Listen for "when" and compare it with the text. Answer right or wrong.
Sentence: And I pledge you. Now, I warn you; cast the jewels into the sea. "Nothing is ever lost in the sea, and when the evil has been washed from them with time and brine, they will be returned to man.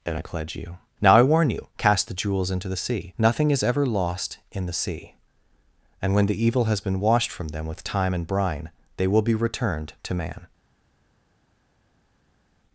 right